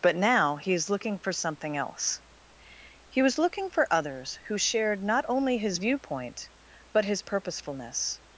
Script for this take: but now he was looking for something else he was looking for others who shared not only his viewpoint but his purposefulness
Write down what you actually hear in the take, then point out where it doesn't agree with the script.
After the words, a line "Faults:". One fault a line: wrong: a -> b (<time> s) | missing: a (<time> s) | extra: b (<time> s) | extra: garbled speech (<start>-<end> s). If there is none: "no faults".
but now he is looking for something else he was looking for others who shared not only his viewpoint but his purposefulness
Faults:
wrong: was -> is (0.7 s)